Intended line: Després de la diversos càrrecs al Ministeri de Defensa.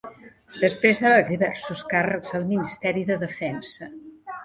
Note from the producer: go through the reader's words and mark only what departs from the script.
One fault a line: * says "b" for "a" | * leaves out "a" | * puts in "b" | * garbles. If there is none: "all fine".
all fine